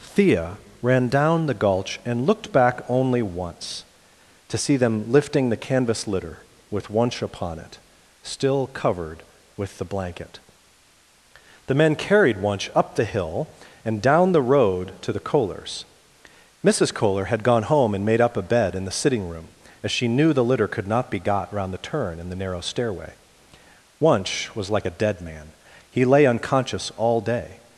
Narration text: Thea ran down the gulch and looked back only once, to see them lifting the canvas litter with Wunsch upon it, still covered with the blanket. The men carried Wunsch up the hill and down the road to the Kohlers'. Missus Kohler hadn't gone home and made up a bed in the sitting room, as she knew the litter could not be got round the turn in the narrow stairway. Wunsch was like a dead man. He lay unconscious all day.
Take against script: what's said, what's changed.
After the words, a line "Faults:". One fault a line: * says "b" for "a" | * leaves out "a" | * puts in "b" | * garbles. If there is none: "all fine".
Thea ran down the gulch and looked back only once, to see them lifting the canvas litter with Wunsch upon it, still covered with the blanket. The men carried Wunsch up the hill and down the road to the Kohlers'. Missus Kohler had gone home and made up a bed in the sitting room, as she knew the litter could not be got round the turn in the narrow stairway. Wunsch was like a dead man. He lay unconscious all day.
Faults:
* says "had" for "hadn't"